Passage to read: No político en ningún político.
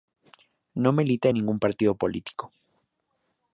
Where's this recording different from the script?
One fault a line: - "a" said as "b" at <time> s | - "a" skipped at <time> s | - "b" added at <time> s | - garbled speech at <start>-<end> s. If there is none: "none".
- "político" said as "milita" at 0.9 s
- "partido" added at 1.6 s